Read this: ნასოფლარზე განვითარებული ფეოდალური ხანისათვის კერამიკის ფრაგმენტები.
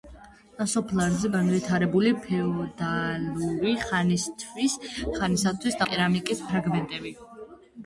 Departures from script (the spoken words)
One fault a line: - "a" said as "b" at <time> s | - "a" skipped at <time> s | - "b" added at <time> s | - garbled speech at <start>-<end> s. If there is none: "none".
none